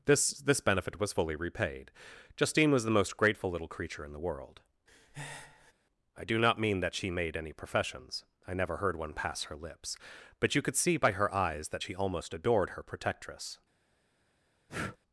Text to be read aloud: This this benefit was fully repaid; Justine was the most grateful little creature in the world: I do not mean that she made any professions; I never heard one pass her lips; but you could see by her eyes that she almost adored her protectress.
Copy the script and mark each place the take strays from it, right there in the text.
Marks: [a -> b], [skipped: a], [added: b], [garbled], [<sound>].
This this benefit was fully repaid; Justine was the most grateful little creature in the world: [breath] I do not mean that she made any professions; I never heard one pass her lips; but you could see by her eyes that she almost adored her protectress. [breath]